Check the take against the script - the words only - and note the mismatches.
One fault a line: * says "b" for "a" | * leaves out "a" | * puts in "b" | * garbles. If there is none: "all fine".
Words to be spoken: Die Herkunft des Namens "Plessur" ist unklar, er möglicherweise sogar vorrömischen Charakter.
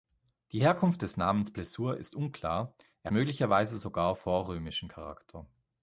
all fine